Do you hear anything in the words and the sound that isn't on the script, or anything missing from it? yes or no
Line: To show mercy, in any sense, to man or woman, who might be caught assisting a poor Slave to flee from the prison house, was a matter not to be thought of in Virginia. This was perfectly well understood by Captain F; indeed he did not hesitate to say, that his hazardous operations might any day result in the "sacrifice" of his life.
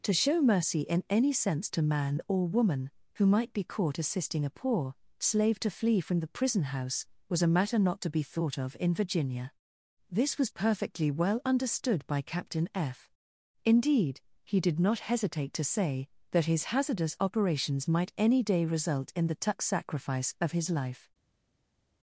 yes